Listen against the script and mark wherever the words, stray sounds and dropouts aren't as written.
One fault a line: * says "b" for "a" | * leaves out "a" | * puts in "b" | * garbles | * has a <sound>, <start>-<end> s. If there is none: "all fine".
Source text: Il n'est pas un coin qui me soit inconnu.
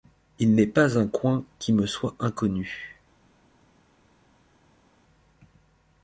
all fine